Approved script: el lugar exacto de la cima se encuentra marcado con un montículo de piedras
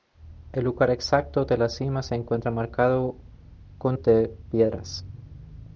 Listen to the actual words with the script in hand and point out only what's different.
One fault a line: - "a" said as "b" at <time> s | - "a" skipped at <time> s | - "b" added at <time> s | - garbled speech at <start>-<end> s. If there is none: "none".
- "un montículo" skipped at 4.0 s